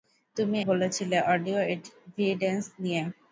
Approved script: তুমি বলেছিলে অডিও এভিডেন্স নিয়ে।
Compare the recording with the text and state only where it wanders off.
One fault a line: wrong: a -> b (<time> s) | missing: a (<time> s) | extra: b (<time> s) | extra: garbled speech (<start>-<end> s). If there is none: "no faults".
no faults